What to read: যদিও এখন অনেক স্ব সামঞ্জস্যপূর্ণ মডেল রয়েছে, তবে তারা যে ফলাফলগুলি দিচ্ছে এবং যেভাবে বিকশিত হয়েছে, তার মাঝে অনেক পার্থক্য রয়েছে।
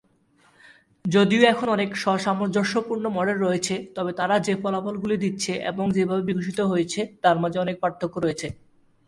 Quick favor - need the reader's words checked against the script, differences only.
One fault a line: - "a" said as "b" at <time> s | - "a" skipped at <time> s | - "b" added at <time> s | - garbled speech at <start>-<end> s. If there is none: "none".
none